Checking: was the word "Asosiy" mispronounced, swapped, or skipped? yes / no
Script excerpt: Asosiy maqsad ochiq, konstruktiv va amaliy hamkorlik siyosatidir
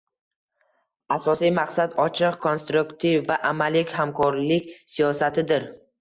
no